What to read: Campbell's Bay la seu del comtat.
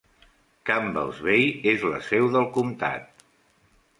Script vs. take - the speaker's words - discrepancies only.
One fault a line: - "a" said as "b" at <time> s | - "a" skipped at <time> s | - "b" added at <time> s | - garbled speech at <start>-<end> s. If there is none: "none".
- "és" added at 1.7 s